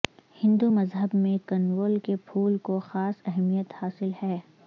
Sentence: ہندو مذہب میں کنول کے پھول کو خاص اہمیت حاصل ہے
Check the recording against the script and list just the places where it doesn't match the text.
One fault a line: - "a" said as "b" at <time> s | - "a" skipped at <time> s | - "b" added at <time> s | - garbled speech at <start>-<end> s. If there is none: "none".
none